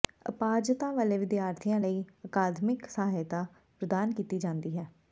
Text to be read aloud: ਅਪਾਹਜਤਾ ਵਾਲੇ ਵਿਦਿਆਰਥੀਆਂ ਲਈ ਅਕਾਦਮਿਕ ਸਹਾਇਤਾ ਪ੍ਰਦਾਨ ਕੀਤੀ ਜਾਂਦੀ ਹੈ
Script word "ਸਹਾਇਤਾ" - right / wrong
right